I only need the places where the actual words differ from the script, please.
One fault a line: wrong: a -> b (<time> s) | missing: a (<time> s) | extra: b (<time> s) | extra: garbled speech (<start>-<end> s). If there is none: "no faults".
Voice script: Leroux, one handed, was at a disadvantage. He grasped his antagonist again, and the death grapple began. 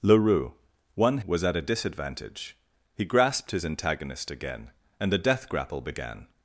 missing: handed (1.2 s)